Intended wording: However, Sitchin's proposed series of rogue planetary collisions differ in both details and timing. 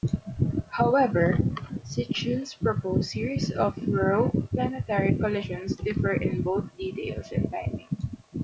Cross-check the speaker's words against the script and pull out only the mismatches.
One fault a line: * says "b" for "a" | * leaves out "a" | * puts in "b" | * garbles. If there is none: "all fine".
all fine